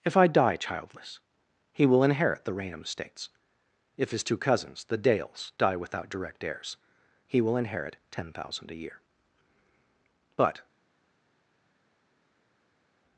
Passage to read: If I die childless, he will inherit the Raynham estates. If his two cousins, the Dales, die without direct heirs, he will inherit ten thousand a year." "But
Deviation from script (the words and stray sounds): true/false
false